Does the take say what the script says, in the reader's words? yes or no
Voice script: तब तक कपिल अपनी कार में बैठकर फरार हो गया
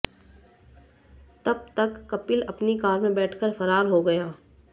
yes